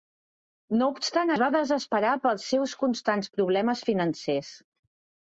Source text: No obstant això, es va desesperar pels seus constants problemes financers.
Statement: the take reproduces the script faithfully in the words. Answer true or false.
false